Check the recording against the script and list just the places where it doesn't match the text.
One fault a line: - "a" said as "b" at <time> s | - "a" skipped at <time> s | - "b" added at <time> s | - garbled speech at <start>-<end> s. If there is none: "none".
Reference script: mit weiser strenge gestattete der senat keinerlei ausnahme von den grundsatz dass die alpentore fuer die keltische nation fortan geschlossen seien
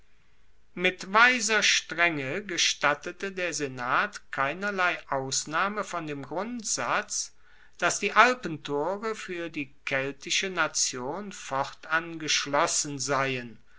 - "den" said as "dem" at 6.1 s